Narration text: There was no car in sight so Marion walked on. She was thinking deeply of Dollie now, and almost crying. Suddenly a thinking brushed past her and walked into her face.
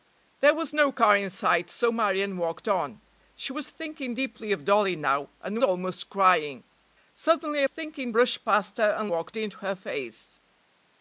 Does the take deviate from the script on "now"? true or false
false